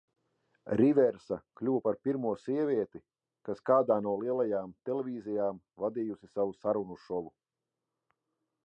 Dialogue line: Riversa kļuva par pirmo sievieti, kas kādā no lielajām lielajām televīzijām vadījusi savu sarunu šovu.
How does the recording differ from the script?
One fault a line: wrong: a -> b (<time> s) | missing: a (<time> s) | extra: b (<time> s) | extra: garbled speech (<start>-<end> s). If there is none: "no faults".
missing: lielajām (4.7 s)